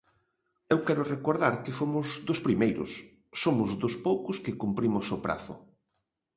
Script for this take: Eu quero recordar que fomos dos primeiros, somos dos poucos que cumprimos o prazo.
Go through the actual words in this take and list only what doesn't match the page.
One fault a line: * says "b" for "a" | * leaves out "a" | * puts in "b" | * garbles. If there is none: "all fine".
all fine